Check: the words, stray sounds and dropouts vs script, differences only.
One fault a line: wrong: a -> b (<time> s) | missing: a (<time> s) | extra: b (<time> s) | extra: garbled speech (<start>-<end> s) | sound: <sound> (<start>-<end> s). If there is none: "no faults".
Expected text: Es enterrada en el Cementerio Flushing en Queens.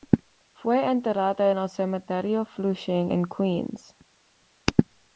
wrong: Es -> Fue (0.5 s)